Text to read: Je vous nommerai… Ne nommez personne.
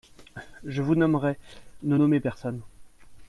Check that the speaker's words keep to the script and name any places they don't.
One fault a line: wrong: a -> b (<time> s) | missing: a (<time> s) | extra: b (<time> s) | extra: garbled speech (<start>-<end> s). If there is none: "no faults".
no faults